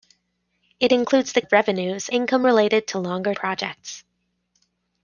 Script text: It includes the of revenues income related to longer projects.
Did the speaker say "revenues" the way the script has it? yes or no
yes